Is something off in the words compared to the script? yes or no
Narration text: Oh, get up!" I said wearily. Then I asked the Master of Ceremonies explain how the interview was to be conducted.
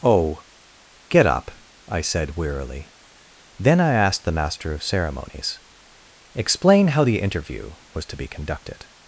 no